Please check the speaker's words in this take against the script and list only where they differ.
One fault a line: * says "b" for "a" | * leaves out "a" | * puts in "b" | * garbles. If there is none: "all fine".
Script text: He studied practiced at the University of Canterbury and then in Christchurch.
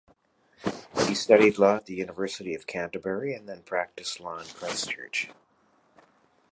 * says "law" for "practiced"
* puts in "practiced law"